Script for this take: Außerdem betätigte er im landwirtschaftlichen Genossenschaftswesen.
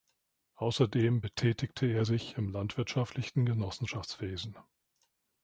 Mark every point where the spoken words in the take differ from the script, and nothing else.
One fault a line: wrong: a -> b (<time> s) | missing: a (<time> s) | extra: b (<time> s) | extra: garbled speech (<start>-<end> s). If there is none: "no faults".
extra: sich (2.0 s)